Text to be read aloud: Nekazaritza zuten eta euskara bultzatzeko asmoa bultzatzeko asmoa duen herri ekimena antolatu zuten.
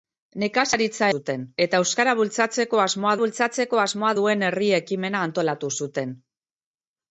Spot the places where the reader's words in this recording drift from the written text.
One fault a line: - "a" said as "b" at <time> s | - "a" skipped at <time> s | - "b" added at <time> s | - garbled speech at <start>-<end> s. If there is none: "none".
none